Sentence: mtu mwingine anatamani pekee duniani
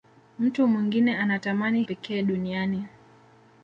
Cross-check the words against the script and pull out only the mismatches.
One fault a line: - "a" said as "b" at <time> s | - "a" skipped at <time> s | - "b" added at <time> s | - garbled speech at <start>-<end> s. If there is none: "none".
none